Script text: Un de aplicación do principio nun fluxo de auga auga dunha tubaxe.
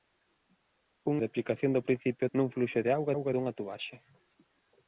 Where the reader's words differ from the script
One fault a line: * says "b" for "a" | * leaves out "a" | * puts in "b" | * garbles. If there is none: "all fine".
all fine